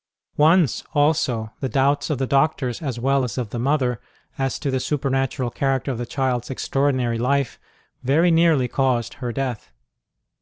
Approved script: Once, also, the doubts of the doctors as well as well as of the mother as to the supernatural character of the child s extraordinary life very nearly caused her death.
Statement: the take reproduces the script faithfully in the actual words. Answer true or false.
false